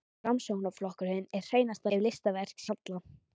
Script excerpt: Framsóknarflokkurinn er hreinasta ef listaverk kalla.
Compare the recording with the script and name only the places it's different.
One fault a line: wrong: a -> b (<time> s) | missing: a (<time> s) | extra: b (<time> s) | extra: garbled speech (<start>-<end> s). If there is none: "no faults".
no faults